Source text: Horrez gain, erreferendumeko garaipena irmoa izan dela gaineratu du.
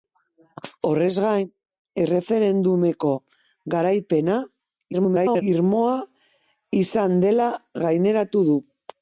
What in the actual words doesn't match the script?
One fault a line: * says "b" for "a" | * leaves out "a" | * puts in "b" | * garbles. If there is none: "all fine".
* garbles